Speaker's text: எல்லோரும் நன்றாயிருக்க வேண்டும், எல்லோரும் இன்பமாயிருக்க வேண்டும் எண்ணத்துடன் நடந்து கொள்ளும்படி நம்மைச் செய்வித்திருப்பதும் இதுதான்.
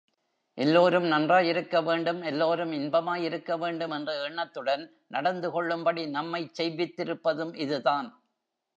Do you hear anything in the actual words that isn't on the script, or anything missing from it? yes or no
yes